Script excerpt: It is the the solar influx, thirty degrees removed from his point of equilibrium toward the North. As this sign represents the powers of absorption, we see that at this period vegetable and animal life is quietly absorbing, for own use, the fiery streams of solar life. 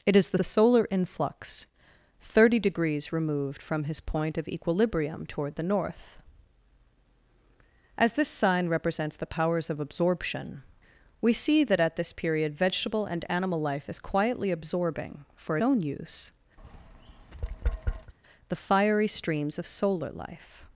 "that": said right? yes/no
yes